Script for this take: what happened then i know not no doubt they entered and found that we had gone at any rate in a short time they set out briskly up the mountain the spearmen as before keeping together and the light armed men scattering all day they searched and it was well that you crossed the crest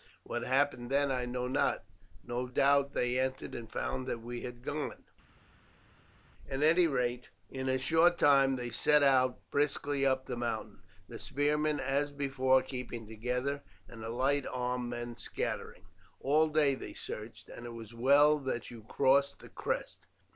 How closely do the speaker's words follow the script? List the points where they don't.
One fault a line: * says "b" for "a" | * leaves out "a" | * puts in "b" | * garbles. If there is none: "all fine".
all fine